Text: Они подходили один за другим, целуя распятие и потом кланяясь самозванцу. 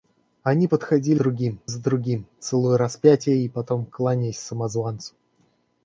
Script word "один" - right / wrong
wrong